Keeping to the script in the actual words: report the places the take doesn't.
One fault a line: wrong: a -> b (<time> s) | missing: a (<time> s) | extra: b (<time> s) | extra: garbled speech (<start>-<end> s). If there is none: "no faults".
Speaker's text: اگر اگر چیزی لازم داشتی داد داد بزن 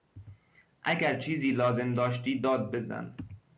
missing: اگر (1.2 s)
missing: داد (2.7 s)